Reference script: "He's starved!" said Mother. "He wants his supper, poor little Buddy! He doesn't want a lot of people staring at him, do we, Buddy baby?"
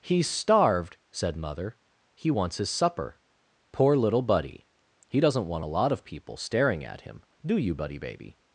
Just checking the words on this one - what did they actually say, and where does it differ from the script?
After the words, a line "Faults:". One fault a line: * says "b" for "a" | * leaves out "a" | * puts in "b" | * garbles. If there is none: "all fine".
"He's starved!" said Mother. "He wants his supper, poor little Buddy! He doesn't want a lot of people staring at him, do you, Buddy baby?"
Faults:
* says "you" for "we"